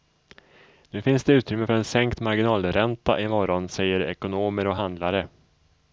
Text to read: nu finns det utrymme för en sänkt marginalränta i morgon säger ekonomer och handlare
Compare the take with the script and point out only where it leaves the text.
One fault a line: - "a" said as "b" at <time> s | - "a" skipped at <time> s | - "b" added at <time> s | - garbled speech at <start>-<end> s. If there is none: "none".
none